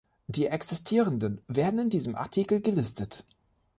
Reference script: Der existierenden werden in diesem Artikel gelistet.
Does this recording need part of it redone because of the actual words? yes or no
yes